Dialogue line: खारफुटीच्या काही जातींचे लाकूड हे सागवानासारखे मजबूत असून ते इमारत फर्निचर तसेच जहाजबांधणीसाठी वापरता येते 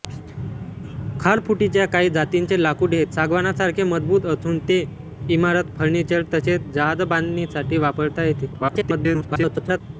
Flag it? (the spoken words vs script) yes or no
yes